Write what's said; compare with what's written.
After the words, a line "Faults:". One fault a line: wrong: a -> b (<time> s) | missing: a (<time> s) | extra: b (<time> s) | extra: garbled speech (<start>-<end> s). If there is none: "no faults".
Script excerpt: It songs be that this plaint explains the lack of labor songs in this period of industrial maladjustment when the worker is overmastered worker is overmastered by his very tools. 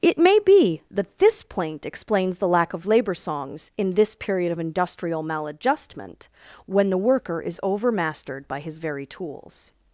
It may be that this plaint explains the lack of labor songs in this period of industrial maladjustment when the worker is overmastered by his very tools.
Faults:
wrong: songs -> may (0.2 s)
missing: worker is overmastered (8.5 s)